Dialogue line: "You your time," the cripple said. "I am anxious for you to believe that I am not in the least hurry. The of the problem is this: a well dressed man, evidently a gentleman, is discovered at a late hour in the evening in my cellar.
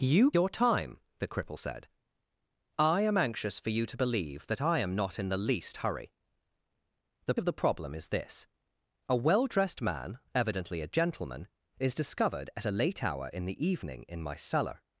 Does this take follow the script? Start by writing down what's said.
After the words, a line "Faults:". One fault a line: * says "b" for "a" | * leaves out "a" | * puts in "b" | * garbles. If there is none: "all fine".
"You your time," the cripple said. "I am anxious for you to believe that I am not in the least hurry. The of the problem is this: a well dressed man, evidently a gentleman, is discovered at a late hour in the evening in my cellar.
Faults:
all fine